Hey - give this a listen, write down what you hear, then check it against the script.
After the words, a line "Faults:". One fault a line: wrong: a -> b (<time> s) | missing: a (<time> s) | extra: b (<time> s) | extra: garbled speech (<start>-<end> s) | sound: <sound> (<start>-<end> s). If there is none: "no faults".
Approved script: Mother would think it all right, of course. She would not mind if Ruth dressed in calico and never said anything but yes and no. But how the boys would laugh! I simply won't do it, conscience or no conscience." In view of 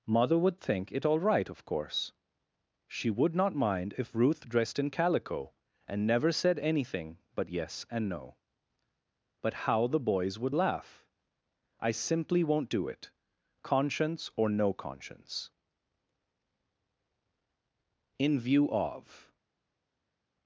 Mother would think it all right, of course. She would not mind if Ruth dressed in calico and never said anything but yes and no. But how the boys would laugh! I simply won't do it, conscience or no conscience." In view of
Faults:
no faults